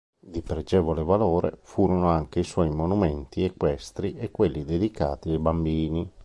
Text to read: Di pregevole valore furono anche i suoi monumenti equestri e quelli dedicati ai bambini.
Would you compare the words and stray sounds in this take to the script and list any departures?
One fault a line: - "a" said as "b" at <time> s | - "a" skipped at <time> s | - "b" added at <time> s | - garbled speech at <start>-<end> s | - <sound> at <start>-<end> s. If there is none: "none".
none